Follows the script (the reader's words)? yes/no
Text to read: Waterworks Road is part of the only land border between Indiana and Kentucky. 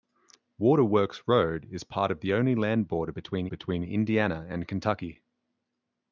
no